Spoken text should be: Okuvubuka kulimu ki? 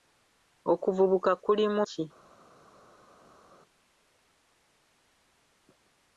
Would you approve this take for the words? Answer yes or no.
yes